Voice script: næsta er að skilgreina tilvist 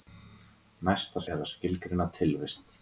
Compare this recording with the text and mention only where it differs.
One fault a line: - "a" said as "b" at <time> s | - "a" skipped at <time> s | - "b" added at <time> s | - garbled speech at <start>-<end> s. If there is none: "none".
none